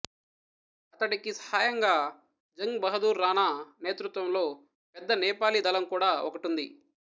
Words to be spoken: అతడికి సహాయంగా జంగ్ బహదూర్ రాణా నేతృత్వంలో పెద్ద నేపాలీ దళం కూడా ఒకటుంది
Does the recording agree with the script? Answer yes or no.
yes